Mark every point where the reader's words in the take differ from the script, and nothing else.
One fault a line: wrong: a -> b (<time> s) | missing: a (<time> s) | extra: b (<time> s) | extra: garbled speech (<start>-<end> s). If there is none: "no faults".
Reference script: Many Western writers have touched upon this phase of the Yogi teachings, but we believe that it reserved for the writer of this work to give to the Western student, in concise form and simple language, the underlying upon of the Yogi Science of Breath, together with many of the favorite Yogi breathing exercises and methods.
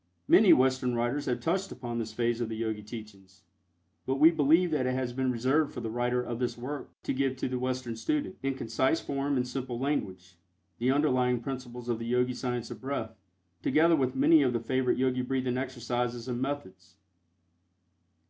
extra: has been (5.0 s)
wrong: upon -> principles (11.4 s)